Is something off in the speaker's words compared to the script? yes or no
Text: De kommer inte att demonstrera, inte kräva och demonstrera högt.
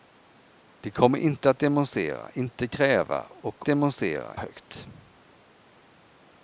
no